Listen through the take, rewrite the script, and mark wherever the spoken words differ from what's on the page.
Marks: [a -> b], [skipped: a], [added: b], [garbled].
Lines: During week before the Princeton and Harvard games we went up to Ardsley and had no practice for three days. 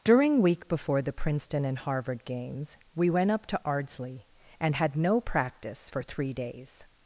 During week before the Princeton and Harvard games we went up to Ardsley and had no practice for three days.